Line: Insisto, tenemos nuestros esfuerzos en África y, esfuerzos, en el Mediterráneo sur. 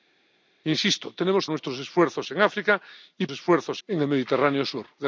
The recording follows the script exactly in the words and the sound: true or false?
true